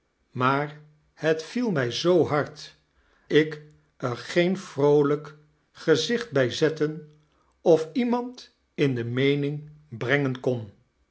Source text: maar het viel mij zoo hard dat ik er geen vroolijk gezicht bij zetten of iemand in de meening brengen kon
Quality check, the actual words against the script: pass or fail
fail